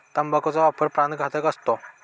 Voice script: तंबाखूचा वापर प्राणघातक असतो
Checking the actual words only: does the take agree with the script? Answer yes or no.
yes